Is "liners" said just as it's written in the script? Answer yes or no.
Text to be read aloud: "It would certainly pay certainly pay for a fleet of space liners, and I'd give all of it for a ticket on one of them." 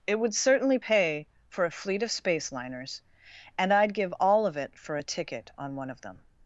yes